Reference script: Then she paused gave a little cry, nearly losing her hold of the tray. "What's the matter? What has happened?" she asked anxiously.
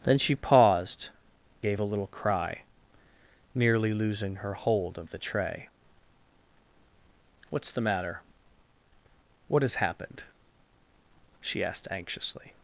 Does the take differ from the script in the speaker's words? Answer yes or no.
no